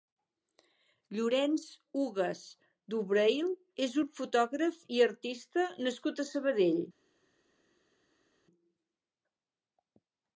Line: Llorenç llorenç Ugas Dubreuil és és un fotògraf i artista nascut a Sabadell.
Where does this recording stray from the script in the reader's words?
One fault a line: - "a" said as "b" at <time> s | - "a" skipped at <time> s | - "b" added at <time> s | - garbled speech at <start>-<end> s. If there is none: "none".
- "llorenç" skipped at 1.6 s
- "és" skipped at 4.0 s